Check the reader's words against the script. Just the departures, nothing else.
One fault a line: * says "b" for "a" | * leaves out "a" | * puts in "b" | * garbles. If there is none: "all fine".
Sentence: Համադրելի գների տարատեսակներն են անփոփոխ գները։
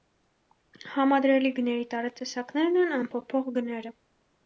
all fine